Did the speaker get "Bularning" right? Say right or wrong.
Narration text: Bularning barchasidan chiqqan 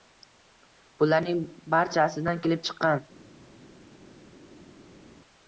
right